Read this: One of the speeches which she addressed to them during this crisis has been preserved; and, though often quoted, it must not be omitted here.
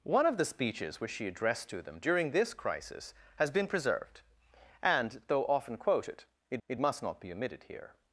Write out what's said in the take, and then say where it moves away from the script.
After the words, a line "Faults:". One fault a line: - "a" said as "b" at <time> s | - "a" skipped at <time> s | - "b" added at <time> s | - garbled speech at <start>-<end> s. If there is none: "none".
One of the speeches which she addressed to them during this crisis has been preserved; and, though often quoted, it it must not be omitted here.
Faults:
- "it" added at 6.7 s